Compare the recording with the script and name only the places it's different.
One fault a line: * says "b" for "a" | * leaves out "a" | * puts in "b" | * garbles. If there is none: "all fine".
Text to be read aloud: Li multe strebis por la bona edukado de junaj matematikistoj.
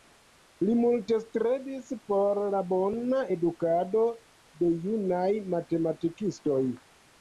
all fine